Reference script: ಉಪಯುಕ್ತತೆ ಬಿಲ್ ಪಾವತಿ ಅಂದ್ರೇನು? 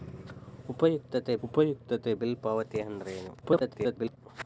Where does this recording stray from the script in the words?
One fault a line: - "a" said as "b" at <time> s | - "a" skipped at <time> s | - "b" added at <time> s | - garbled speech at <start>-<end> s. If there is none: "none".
- "ಉಪಯುಕ್ತತೆ" added at 1.4 s
- garbled speech at 3.4-4.2 s